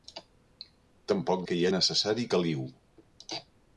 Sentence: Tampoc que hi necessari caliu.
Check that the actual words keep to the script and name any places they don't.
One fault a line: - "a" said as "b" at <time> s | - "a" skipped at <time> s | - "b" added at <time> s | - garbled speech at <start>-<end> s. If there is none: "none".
none